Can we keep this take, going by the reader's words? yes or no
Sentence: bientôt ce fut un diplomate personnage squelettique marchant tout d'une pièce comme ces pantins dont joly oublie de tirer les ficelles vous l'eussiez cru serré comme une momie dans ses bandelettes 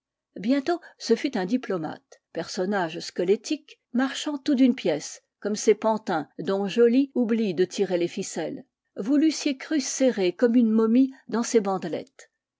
yes